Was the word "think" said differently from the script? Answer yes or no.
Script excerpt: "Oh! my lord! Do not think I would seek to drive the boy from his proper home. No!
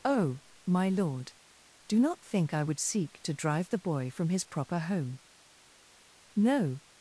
no